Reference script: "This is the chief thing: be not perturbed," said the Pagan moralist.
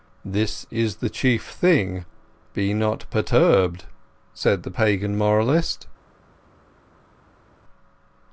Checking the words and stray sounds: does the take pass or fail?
pass